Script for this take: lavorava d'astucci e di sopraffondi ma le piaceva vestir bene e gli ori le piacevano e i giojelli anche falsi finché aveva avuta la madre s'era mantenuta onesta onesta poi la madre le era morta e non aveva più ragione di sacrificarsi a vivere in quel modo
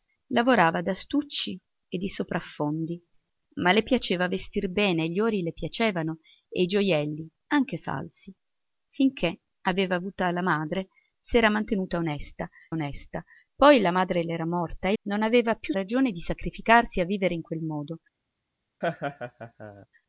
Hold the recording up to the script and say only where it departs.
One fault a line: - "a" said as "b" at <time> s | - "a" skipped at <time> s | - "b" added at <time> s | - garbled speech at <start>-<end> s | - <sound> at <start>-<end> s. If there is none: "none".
- laugh at 18.8-19.9 s